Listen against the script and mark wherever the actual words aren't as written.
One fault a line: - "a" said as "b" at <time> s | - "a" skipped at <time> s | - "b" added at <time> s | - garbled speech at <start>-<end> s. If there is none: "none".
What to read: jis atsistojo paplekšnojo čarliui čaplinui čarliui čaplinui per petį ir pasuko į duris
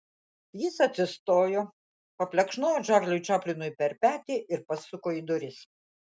- "čarliui čaplinui" skipped at 3.7 s